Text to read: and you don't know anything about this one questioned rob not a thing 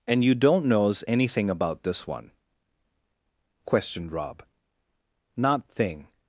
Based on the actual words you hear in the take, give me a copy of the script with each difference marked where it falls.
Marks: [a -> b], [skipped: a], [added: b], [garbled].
and you don't [know -> knows] anything about this one questioned rob not [skipped: a] thing